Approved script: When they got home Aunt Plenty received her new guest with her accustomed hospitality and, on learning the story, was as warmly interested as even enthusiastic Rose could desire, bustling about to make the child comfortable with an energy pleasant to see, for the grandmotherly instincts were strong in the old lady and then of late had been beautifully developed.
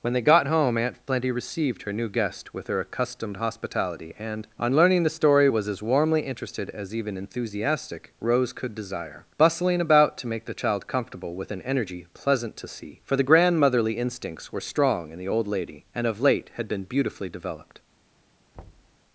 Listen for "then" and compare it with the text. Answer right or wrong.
wrong